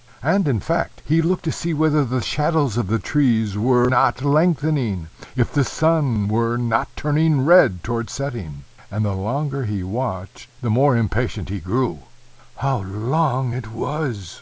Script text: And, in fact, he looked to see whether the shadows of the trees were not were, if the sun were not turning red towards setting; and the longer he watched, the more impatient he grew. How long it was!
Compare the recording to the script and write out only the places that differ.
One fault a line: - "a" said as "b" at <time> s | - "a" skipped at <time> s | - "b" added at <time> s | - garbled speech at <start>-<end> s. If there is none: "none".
- "were" said as "lengthening" at 4.2 s